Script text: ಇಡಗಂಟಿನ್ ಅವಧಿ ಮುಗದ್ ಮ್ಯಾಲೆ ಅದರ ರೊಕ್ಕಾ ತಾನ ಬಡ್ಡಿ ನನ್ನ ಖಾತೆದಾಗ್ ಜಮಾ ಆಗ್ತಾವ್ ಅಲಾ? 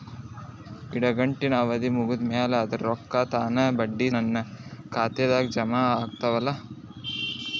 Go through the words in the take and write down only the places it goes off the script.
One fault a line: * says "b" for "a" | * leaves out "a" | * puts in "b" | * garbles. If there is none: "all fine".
all fine